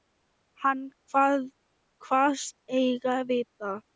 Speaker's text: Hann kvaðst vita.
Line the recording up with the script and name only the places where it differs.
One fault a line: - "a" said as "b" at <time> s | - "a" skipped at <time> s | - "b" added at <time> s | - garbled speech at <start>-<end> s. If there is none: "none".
- "eigi" added at 2.8 s